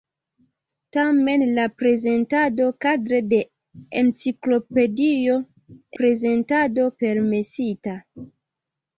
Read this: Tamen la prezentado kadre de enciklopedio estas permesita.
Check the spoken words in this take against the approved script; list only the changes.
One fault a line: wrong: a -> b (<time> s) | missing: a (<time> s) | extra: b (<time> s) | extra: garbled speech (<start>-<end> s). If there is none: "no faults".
wrong: estas -> prezentado (6.0 s)